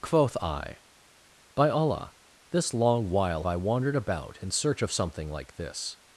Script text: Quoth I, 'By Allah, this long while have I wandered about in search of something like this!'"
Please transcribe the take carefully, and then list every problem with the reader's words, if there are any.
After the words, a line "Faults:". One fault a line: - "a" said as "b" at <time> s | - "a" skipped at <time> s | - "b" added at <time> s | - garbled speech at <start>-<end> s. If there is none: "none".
Quoth I, 'By Allah, this long while I wandered about in search of something like this!'"
Faults:
- "have" skipped at 3.5 s